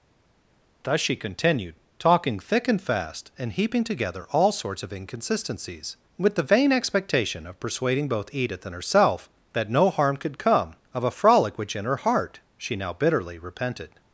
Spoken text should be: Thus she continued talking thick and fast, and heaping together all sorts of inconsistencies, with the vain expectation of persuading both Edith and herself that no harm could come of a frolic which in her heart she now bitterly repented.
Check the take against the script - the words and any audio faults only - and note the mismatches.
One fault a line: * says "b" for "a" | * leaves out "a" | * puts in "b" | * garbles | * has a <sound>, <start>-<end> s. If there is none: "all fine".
all fine